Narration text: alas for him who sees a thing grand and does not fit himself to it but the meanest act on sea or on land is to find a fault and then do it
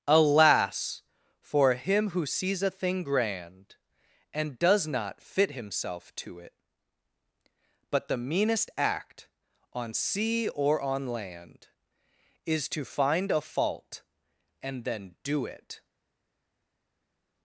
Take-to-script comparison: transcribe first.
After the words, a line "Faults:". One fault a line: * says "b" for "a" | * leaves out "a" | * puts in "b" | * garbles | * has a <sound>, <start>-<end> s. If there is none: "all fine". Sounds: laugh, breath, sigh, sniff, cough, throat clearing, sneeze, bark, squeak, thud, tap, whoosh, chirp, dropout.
alas for him who sees a thing grand and does not fit himself to it but the meanest act on sea or on land is to find a fault and then do it
Faults:
all fine